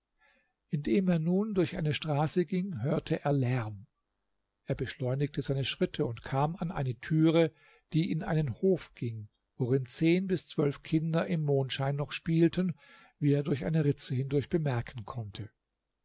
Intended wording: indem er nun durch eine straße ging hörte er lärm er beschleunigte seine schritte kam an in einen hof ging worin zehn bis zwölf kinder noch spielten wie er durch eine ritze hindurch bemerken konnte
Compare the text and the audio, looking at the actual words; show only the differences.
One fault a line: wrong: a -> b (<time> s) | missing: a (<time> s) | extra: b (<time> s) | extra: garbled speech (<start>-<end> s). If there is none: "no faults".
extra: und (6.0 s)
extra: eine türe die (6.7 s)
extra: im mondschein (11.3 s)